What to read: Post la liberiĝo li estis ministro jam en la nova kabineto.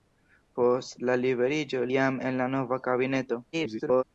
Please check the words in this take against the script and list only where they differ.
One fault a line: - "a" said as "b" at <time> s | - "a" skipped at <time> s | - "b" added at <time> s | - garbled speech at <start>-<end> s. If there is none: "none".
- "li estis ministro" skipped at 1.8 s
- garbled speech at 3.5-4.0 s